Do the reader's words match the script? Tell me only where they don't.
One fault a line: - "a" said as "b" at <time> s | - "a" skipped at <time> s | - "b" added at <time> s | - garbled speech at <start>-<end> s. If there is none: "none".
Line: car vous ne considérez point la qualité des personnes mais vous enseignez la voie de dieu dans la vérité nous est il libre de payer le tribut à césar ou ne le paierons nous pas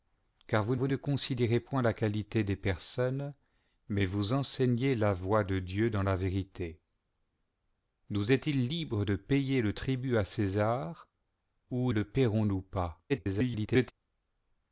- "vous" added at 0.8 s
- "ne" skipped at 11.9 s
- garbled speech at 13.1-13.9 s